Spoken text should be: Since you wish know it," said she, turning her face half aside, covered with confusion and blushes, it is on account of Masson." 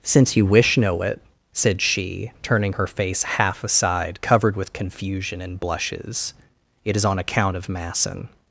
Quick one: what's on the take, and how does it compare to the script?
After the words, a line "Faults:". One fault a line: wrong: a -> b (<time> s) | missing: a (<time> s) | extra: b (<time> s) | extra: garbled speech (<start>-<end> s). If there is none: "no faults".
Since you wish know it," said she, turning her face half aside, covered with confusion and blushes, it is on account of Masson."
Faults:
no faults